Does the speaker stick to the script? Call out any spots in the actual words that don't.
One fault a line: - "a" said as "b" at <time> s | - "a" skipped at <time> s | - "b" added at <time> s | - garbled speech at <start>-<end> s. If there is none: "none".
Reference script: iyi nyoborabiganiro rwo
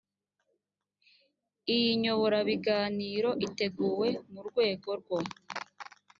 - "iteguwe mu rwego" added at 3.5 s